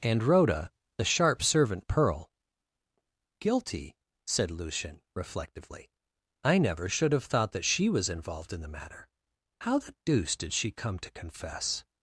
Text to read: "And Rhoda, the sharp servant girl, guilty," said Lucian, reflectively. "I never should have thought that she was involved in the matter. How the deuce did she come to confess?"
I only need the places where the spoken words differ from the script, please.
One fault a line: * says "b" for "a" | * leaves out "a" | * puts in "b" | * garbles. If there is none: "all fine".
* says "pearl" for "girl"